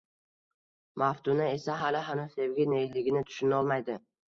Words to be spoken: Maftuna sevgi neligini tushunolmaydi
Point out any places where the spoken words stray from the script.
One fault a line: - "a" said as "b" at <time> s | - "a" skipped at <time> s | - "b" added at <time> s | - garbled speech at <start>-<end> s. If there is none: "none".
- "esa hali hanuz" added at 1.6 s